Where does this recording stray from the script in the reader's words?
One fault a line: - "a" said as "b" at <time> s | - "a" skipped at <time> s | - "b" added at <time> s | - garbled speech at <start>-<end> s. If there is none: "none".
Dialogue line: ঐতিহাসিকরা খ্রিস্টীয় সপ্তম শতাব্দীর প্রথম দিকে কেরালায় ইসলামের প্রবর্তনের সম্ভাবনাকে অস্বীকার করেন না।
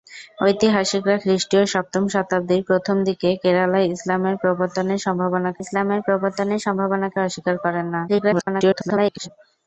- "ইসলামের প্রবর্তনের সম্ভাবনাকে" added at 5.6 s
- garbled speech at 8.1-9.3 s